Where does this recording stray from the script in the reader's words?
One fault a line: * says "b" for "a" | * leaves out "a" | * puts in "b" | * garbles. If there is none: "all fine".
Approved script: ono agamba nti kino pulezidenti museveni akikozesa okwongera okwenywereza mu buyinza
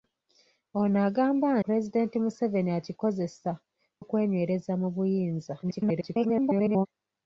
* leaves out "nti kino"
* leaves out "okwongera"
* garbles